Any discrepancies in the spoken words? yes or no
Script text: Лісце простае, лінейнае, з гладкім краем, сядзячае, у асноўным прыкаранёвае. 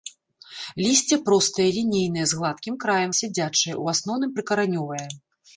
no